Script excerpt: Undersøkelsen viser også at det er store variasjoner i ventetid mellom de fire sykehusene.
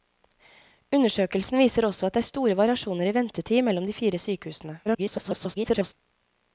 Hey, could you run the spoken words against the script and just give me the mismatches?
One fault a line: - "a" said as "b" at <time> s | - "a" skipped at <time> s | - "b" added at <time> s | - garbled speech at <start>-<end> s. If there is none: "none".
- garbled speech at 4.8-5.9 s